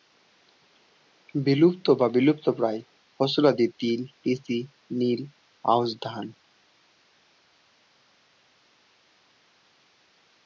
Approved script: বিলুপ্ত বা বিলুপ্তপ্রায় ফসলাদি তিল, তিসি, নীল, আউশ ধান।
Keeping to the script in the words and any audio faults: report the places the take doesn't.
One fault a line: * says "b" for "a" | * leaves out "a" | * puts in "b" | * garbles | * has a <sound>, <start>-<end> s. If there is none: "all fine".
all fine